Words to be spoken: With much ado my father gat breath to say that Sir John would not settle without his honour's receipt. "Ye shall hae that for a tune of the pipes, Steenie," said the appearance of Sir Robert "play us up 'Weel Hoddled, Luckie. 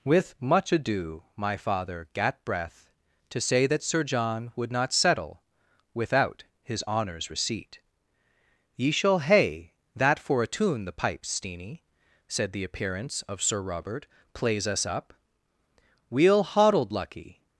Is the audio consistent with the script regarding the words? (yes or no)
no